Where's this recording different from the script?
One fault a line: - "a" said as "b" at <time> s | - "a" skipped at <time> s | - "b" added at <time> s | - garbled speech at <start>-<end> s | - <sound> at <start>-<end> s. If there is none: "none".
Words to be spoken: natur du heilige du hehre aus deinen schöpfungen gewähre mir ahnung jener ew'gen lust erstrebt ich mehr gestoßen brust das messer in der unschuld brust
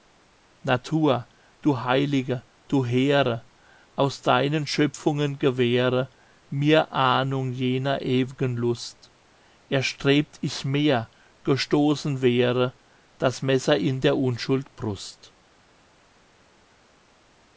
- "brust" said as "wäre" at 12.2 s